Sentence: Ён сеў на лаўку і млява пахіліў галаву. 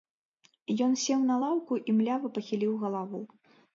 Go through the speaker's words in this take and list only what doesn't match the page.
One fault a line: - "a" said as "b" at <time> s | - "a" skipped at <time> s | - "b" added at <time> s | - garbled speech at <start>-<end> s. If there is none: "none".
none